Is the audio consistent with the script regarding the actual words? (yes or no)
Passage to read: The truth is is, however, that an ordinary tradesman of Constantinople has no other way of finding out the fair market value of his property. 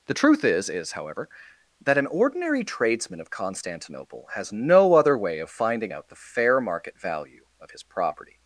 yes